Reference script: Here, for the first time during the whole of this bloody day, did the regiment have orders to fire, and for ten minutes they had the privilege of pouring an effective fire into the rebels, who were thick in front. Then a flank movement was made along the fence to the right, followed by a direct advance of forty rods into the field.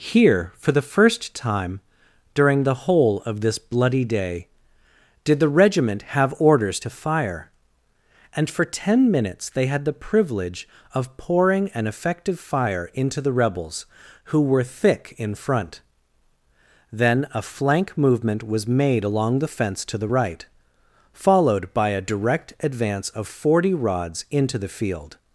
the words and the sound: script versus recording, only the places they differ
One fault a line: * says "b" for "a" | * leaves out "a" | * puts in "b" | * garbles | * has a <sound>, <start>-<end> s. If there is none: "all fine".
all fine